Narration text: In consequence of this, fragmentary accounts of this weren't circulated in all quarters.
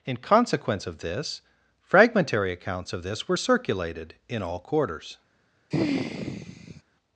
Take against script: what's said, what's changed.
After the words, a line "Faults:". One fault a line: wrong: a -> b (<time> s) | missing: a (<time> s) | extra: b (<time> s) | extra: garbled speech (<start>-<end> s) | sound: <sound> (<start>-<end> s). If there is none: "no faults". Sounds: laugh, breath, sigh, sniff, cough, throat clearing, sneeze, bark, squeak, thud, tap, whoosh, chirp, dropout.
In consequence of this, fragmentary accounts of this were circulated in all quarters.
Faults:
wrong: weren't -> were (3.3 s)
sound: sigh (5.7-6.8 s)